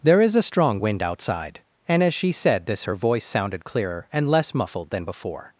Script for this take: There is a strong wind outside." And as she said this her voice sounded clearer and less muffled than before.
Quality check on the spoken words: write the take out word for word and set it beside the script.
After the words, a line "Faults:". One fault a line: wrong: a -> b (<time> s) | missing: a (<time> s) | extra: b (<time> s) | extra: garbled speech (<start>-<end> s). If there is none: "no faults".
There is a strong wind outside." And as she said this her voice sounded clearer and less muffled than before.
Faults:
no faults